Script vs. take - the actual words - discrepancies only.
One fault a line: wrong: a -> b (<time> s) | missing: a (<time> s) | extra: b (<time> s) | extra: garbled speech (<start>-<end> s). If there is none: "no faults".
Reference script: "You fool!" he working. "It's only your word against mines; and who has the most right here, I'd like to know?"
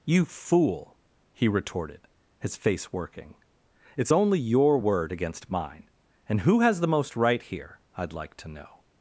extra: retorted his face (1.5 s)
wrong: mines -> mine (5.5 s)